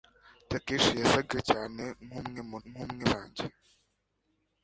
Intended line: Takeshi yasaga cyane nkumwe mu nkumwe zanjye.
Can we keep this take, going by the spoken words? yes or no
yes